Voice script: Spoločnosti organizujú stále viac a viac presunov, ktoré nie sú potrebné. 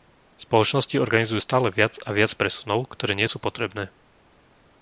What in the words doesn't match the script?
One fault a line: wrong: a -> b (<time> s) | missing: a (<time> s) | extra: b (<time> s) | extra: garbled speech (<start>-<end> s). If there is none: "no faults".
no faults